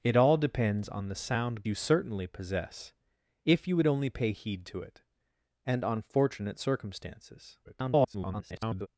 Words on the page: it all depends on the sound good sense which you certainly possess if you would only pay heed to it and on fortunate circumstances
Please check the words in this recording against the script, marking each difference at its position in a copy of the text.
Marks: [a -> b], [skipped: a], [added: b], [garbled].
it all depends on the sound [skipped: good sense which] you certainly possess if you would only pay heed to it and on fortunate circumstances [garbled]